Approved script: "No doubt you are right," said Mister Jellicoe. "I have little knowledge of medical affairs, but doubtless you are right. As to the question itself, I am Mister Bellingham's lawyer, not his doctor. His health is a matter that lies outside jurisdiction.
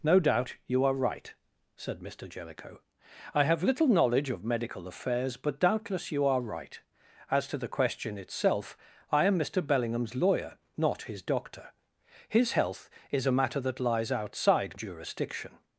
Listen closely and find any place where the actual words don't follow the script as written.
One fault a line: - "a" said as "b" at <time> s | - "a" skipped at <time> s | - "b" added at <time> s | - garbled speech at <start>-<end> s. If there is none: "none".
none